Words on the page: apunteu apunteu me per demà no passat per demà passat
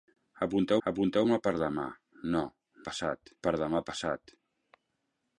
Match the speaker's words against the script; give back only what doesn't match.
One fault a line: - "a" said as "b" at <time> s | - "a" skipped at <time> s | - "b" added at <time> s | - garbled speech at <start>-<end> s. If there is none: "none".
none